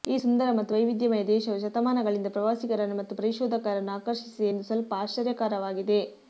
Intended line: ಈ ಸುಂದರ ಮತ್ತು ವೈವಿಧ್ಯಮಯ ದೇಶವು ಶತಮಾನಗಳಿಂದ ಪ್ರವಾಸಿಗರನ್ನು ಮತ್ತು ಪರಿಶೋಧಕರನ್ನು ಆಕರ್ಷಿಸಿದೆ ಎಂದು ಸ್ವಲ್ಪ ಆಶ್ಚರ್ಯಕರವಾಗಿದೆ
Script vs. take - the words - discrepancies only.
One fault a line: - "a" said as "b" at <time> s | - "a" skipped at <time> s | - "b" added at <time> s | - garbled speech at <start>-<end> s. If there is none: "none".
none